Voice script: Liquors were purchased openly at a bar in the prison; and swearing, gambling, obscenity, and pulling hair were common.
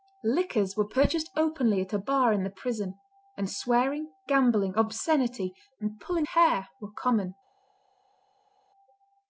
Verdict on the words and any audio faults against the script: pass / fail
pass